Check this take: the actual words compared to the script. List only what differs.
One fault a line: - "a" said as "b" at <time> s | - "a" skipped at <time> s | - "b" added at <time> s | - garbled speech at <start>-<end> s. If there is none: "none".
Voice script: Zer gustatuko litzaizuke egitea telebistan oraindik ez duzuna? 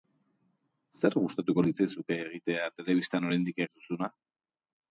none